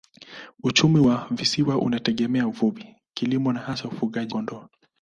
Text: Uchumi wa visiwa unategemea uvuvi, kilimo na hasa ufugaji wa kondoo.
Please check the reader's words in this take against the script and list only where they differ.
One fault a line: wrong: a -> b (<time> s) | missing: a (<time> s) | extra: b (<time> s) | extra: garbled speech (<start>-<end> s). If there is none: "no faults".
missing: wa (4.3 s)